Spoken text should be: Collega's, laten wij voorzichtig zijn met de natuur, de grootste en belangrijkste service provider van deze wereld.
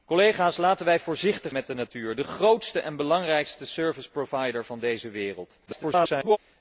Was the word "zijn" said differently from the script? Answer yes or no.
yes